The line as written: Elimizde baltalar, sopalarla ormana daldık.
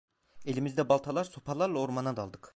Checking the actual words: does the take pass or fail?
pass